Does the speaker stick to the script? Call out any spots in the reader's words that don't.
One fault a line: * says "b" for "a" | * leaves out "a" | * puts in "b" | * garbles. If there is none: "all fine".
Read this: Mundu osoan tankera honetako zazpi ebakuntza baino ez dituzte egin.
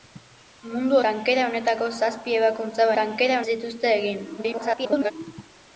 * leaves out "osoan"
* says "tankera" for "baino"
* garbles